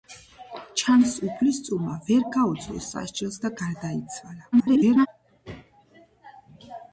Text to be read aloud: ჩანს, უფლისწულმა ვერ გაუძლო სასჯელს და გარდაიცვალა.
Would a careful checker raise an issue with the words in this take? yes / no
yes